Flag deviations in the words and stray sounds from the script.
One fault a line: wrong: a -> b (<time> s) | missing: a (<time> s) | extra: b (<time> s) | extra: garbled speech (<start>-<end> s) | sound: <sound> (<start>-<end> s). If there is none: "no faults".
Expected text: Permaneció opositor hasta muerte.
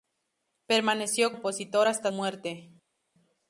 no faults